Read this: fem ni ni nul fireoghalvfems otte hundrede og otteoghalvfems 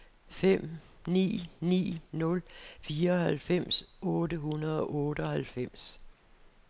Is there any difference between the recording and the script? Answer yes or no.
no